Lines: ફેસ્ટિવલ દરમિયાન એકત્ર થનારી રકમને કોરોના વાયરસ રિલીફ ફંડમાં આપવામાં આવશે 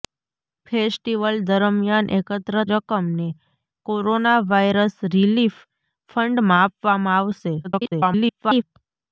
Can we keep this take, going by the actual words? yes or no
no